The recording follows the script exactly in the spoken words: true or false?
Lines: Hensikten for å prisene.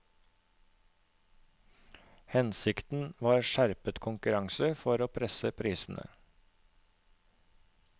false